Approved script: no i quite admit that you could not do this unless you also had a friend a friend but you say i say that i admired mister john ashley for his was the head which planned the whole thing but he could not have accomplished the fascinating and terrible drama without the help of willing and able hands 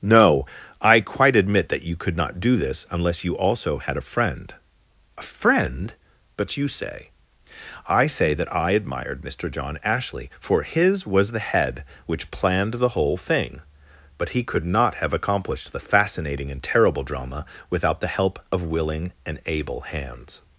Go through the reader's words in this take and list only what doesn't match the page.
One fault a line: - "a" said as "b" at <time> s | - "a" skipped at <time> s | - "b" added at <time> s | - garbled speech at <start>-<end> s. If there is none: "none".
none